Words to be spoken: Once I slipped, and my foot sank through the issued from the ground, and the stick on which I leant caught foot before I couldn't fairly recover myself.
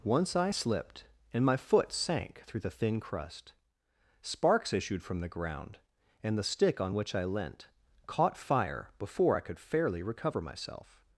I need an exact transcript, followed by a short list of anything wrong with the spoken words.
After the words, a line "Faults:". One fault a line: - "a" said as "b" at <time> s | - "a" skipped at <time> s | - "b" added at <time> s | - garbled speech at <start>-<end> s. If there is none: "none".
Once I slipped, and my foot sank through the thin crust. Sparks issued from the ground, and the stick on which I leant caught fire before I could fairly recover myself.
Faults:
- "thin crust Sparks" added at 2.7 s
- "foot" said as "fire" at 8.4 s
- "couldn't" said as "could" at 9.4 s